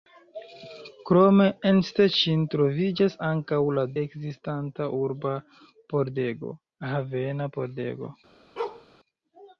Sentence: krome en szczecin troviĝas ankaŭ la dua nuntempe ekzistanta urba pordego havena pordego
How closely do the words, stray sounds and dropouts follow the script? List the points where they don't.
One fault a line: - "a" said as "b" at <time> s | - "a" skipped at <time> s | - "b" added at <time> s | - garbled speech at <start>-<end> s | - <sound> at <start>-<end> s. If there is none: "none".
- "dua nuntempe" skipped at 3.9 s
- bark at 8.6-8.9 s